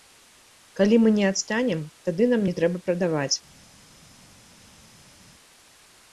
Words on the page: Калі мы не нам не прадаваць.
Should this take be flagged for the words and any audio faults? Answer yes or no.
yes